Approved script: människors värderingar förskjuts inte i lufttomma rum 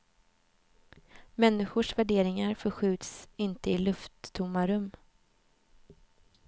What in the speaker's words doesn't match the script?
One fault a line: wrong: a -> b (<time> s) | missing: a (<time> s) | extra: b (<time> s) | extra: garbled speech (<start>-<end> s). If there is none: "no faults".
no faults